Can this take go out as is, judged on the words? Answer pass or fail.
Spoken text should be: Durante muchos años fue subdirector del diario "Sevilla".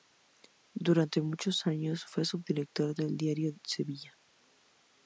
pass